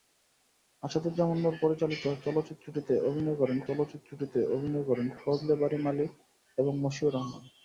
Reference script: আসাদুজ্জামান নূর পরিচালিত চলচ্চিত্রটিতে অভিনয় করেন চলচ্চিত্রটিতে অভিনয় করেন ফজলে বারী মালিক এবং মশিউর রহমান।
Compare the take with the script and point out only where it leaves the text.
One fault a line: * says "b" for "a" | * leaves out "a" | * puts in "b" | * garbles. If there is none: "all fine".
all fine